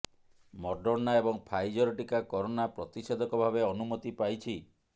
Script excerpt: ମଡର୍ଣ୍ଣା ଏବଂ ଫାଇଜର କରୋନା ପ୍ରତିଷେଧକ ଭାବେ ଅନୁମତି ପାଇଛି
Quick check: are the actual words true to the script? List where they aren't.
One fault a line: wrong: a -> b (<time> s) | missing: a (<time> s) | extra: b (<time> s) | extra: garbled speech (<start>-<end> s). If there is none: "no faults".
extra: ଟିକା (2.0 s)